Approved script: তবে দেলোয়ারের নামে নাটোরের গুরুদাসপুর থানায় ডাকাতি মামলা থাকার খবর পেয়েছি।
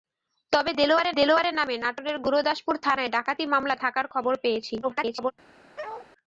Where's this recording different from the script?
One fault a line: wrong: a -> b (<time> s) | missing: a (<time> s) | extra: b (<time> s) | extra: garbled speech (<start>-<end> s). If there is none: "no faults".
extra: দেলোয়ারের (1.1 s)
extra: garbled speech (4.8-5.3 s)